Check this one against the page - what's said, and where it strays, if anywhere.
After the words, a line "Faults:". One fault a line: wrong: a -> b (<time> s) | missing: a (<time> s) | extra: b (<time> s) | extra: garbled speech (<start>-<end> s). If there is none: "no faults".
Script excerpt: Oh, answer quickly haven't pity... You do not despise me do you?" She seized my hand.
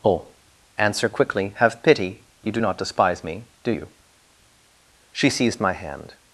Oh, answer quickly have pity... You do not despise me do you?" She seized my hand.
Faults:
wrong: haven't -> have (1.6 s)